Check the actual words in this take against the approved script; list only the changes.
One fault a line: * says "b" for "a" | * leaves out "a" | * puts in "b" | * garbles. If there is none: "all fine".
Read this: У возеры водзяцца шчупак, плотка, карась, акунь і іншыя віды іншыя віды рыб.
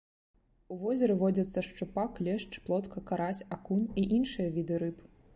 * puts in "лешч"
* leaves out "іншыя віды"